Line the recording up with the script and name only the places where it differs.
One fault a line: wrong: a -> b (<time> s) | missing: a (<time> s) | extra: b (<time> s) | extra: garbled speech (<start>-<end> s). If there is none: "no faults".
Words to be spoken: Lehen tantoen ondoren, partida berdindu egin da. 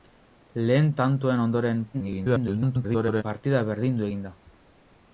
extra: garbled speech (1.9-3.2 s)